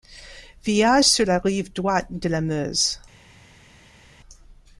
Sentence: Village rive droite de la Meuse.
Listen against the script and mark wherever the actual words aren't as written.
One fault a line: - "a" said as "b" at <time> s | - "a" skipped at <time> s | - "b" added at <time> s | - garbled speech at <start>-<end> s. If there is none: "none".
- "sur la" added at 1.0 s